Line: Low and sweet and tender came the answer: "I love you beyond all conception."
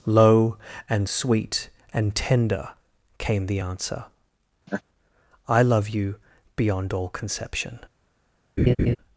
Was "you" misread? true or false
false